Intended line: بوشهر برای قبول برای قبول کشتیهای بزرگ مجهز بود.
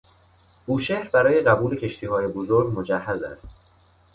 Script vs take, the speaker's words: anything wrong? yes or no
yes